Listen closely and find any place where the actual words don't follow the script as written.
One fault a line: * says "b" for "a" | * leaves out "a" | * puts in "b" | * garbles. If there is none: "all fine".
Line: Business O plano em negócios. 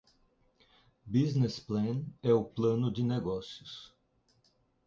* puts in "Plan é"
* says "de" for "em"